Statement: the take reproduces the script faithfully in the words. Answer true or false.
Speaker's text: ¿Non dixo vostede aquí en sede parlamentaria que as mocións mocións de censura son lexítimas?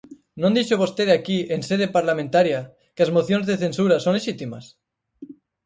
false